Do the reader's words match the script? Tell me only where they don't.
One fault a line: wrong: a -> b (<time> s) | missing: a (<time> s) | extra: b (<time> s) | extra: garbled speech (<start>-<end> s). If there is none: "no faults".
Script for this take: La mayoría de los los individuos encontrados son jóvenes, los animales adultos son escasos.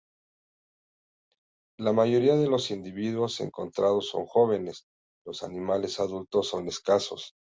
missing: los (2.7 s)